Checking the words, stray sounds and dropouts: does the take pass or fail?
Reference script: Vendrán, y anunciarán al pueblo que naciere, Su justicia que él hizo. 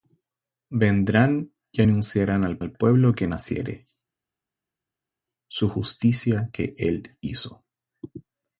fail